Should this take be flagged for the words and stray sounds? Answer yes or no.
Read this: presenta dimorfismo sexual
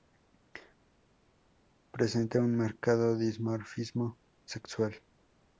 yes